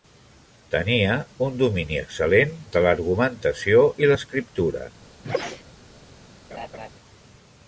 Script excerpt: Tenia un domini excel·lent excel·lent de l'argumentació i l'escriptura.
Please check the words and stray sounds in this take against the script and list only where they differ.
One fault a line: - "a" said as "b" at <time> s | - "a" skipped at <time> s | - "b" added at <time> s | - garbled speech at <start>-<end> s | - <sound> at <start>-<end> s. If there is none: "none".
- "excel·lent" skipped at 2.6 s
- sneeze at 5.2-5.6 s
- laugh at 6.5-6.9 s